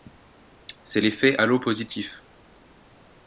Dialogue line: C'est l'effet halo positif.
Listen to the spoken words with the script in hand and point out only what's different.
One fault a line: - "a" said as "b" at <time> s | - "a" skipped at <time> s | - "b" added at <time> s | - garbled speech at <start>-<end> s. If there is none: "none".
none